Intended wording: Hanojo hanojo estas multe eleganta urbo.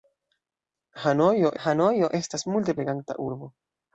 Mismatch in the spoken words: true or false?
false